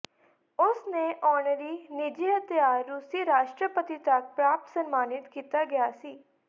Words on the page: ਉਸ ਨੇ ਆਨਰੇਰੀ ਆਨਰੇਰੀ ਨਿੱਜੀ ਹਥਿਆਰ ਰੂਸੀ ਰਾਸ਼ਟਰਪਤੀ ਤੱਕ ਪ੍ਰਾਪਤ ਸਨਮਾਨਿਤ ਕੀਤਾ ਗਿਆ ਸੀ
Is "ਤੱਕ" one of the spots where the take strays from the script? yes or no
no